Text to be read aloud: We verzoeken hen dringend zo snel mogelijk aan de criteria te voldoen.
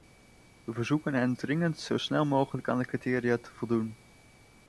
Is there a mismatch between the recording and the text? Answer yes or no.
no